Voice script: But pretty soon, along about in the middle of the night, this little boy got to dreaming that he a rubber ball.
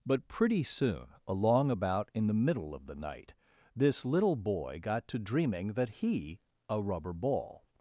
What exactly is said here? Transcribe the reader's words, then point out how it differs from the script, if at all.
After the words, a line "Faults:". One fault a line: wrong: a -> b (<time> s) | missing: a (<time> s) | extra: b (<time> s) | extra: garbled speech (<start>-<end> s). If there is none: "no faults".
But pretty soon, along about in the middle of the night, this little boy got to dreaming that he a rubber ball.
Faults:
no faults